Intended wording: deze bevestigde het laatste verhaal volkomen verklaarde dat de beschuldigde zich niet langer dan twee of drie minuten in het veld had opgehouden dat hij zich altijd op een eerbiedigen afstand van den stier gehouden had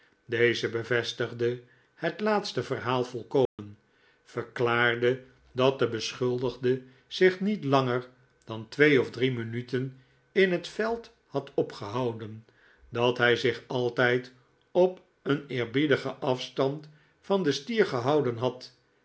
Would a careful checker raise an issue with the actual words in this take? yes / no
no